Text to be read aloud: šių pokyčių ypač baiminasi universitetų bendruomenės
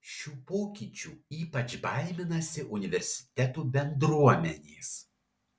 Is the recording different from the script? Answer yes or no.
no